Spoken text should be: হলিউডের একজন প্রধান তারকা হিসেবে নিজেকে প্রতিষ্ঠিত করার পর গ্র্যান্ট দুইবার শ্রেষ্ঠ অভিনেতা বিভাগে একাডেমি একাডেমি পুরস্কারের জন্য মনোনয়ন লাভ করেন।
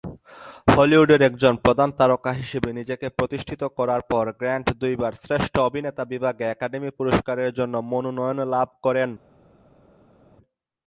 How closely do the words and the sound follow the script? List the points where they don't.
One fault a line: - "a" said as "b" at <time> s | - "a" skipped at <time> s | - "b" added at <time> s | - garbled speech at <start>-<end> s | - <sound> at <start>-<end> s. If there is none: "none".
- "একাডেমি" skipped at 6.9 s